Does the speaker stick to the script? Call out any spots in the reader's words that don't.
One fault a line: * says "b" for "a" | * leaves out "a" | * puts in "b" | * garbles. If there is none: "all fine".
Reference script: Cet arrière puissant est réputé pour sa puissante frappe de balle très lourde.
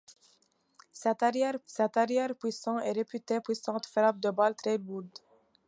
* puts in "cet arrière"
* leaves out "pour sa"